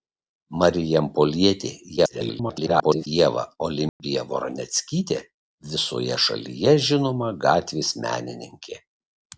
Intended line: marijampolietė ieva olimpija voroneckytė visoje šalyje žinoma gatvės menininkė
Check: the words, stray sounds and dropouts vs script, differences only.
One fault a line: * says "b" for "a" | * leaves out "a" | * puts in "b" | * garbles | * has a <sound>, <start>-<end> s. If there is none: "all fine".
* garbles
* has a dropout, 3.9-4.0 s